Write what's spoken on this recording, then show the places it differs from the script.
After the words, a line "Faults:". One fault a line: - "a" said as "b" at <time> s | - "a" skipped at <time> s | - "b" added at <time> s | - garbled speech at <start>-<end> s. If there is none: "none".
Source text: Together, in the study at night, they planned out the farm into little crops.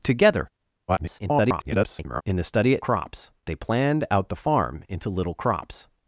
Together, [garbled] in the study at crops, they planned out the farm into little crops.
Faults:
- garbled speech at 0.9-2.2 s
- "night" said as "crops" at 2.8 s